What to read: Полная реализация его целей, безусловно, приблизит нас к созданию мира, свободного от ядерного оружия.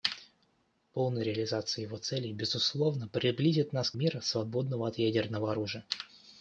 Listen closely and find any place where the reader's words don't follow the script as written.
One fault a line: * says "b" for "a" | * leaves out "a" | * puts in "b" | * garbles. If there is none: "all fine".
* leaves out "созданию"